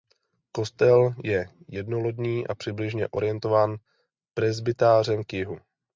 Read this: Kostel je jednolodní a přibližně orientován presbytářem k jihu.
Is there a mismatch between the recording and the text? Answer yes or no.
no